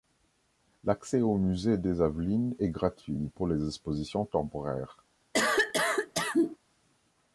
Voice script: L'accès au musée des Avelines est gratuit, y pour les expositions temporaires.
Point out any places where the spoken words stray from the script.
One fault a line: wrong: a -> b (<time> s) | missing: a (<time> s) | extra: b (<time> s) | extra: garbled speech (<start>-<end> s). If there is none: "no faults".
no faults